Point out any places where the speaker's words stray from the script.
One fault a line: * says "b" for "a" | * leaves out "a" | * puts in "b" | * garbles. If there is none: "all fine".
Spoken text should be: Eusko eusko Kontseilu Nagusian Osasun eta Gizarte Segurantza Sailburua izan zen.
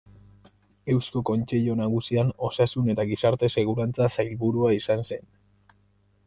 * leaves out "eusko"